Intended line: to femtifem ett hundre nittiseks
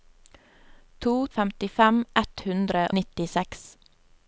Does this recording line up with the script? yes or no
yes